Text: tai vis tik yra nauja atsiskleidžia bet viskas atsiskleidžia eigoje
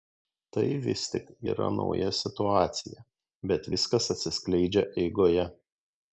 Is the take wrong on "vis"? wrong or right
right